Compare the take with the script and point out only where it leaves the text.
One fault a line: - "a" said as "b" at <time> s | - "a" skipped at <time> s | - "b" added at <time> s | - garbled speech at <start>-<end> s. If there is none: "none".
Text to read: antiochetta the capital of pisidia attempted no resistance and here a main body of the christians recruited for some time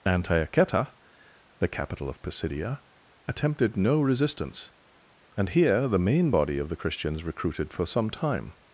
- "a" said as "the" at 5.9 s